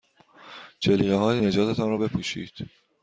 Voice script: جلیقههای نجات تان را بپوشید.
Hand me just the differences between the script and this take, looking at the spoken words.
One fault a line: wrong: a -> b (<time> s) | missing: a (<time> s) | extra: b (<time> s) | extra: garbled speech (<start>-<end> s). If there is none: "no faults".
no faults